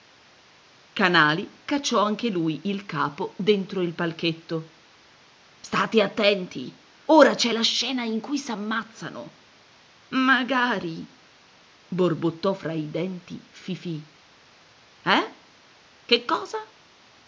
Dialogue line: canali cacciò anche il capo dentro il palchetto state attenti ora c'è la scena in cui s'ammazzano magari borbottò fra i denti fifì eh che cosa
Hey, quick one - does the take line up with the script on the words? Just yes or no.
no